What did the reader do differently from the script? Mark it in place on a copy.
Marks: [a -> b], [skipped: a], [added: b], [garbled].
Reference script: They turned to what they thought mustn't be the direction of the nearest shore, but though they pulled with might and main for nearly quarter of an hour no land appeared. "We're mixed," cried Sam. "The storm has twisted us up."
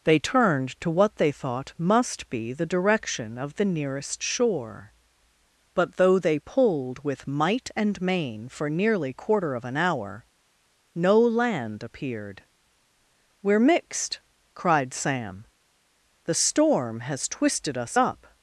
They turned to what they thought [mustn't -> must] be the direction of the nearest shore, but though they pulled with might and main for nearly quarter of an hour no land appeared. "We're mixed," cried Sam. "The storm has twisted us up."